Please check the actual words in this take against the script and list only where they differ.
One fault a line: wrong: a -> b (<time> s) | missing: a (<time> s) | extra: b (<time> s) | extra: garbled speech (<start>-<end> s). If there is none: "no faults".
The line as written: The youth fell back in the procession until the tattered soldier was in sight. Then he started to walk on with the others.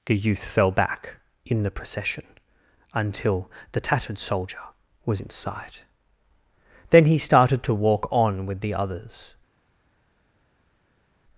no faults